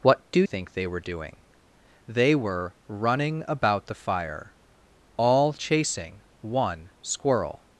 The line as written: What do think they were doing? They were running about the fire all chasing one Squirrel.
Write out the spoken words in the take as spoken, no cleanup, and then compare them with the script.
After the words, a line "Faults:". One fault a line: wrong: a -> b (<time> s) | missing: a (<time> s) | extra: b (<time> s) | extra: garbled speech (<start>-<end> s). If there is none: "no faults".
What do think they were doing? They were running about the fire all chasing one Squirrel.
Faults:
no faults